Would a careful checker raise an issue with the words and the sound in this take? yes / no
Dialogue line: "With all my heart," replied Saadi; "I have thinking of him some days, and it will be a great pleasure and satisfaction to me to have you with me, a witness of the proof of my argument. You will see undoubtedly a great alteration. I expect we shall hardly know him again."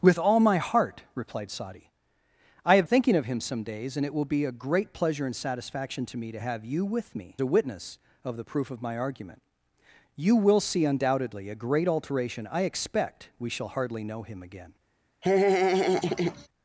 yes